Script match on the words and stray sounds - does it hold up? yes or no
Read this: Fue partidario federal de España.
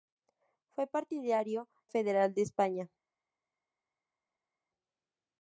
yes